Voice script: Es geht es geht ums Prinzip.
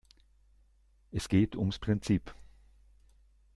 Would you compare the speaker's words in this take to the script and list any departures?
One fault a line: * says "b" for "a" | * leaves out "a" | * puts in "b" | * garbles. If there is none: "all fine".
* leaves out "es geht"